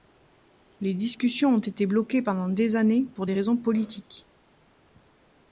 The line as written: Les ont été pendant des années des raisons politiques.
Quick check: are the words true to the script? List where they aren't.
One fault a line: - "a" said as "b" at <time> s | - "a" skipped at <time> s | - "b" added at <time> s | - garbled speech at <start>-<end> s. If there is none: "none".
- "discussions" added at 0.9 s
- "bloquées" added at 1.9 s
- "pour" added at 3.1 s